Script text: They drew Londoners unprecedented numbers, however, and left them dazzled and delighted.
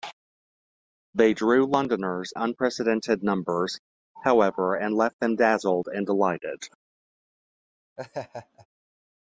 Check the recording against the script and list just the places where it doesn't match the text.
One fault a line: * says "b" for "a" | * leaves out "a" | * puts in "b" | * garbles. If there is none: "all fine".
all fine